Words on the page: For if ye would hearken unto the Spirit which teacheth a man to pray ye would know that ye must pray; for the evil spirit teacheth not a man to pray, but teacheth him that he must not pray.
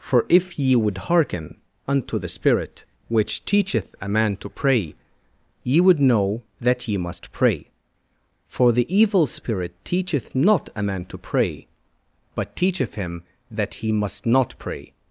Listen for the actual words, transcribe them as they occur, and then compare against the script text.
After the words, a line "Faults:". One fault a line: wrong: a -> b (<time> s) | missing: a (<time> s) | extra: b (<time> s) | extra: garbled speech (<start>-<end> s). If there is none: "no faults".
For if ye would hearken unto the Spirit which teacheth a man to pray ye would know that ye must pray; for the evil spirit teacheth not a man to pray, but teacheth him that he must not pray.
Faults:
no faults